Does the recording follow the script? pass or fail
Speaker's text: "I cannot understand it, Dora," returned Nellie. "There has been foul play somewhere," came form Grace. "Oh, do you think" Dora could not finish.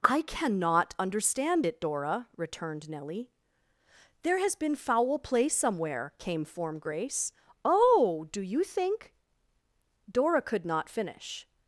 pass